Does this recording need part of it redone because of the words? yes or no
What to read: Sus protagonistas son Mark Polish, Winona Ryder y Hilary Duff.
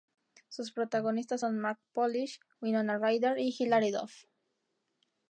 no